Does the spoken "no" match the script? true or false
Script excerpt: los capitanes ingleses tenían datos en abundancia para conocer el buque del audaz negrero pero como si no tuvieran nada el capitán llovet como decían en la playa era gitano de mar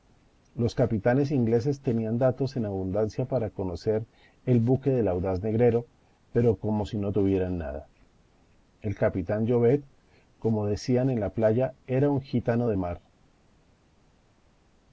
true